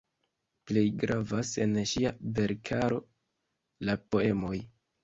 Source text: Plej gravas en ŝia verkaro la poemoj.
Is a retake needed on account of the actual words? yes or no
no